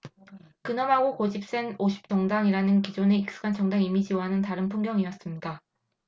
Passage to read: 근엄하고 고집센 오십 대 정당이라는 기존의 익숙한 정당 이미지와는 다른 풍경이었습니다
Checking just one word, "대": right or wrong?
wrong